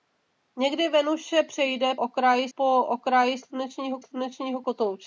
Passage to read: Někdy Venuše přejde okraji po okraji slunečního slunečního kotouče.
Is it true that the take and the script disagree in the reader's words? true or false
false